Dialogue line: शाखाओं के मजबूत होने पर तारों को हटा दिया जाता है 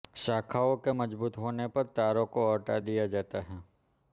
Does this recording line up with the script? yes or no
yes